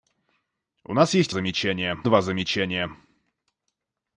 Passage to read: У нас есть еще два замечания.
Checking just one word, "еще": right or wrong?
wrong